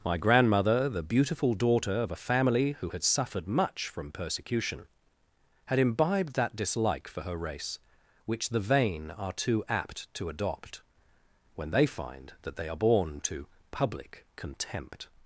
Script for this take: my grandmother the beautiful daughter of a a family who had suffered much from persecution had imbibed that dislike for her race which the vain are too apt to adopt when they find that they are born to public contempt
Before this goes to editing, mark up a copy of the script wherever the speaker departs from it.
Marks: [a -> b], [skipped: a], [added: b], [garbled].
my grandmother the beautiful daughter of a [skipped: a] family who had suffered much from persecution had imbibed that dislike for her race which the vain are too apt to adopt when they find that they are born to public contempt